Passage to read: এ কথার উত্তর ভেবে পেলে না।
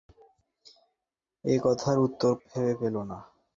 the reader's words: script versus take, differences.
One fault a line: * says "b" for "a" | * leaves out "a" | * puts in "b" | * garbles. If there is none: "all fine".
all fine